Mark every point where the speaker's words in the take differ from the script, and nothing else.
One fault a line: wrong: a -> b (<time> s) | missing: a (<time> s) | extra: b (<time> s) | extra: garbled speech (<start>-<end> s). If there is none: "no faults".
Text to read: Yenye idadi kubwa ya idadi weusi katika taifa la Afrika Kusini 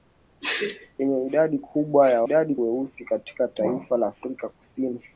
no faults